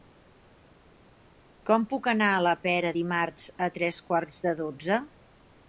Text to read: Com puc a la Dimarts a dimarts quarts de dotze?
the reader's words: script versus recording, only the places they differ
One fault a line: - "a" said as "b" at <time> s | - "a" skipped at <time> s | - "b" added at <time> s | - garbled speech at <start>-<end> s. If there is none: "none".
- "anar" added at 2.1 s
- "Pera" added at 2.6 s
- "dimarts" said as "tres" at 3.8 s